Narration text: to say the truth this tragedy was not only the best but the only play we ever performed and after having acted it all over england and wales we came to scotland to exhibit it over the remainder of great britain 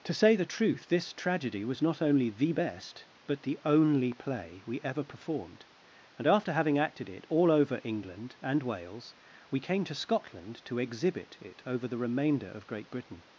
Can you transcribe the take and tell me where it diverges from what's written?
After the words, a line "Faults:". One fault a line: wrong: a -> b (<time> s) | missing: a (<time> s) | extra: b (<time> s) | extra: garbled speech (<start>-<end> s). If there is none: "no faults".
to say the truth this tragedy was not only the best but the only play we ever performed and after having acted it all over england and wales we came to scotland to exhibit it over the remainder of great britain
Faults:
no faults